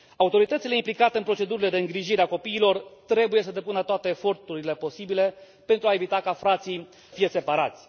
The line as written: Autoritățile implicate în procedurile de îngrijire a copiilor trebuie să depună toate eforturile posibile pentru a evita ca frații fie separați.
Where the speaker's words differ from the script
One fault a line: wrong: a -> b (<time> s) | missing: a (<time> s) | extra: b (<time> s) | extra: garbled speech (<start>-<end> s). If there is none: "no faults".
no faults